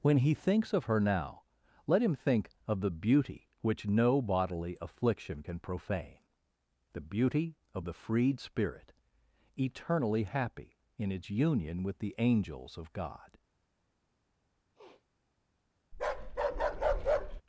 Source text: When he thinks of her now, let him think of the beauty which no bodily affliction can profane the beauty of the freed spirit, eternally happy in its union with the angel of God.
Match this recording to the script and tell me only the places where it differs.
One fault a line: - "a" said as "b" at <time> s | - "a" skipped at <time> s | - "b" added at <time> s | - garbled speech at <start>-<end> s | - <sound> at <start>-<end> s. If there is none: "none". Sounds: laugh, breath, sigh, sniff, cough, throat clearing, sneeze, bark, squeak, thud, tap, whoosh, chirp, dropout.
- "angel" said as "angels" at 12.2 s
- sniff at 14.7-15.1 s
- bark at 15.9-17.4 s